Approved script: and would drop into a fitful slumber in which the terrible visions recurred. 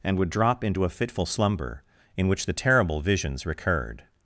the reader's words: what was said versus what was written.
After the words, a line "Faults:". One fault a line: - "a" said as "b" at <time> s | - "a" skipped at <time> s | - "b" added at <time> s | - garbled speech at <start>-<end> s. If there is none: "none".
and would drop into a fitful slumber in which the terrible visions recurred.
Faults:
none